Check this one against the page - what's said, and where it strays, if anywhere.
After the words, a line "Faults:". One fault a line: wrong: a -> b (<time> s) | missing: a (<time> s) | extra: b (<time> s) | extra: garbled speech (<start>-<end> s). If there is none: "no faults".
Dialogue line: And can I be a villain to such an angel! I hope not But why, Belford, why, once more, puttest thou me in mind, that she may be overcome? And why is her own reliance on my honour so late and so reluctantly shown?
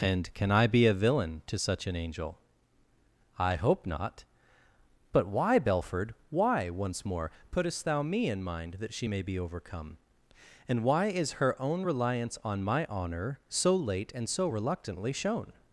And can I be a villain to such an angel! I hope not But why, Belford, why, once more, puttest thou me in mind, that she may be overcome? And why is her own reliance on my honour so late and so reluctantly shown?
Faults:
no faults